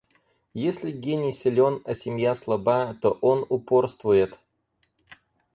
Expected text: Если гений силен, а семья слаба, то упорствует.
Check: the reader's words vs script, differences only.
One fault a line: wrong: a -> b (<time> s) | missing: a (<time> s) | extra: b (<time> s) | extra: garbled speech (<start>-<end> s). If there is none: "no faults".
extra: он (3.2 s)